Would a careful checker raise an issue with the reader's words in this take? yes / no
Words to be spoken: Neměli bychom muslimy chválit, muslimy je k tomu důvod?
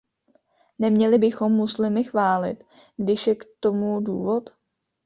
yes